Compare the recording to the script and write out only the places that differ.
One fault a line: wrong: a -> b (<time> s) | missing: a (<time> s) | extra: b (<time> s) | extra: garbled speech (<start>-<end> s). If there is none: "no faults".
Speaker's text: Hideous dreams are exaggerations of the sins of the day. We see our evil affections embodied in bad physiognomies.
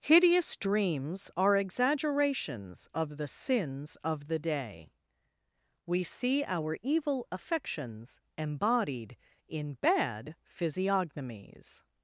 no faults